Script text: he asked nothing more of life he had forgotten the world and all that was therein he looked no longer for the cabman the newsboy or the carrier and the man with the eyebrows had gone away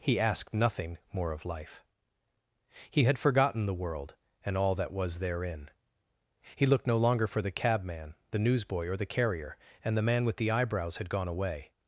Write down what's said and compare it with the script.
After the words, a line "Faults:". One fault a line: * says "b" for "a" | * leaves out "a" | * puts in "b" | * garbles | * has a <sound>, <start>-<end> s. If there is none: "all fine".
he asked nothing more of life he had forgotten the world and all that was therein he looked no longer for the cabman the newsboy or the carrier and the man with the eyebrows had gone away
Faults:
all fine